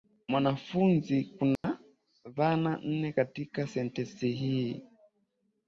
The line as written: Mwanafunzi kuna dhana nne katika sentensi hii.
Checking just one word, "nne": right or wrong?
right